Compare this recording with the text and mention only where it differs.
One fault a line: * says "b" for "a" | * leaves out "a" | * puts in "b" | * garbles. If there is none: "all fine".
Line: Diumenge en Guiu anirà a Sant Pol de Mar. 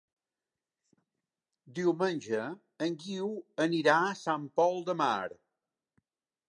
all fine